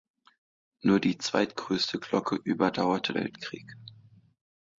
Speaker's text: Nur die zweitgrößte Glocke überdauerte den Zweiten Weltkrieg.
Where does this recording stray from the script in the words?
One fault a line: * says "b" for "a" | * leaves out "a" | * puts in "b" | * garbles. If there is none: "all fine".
* leaves out "den Zweiten"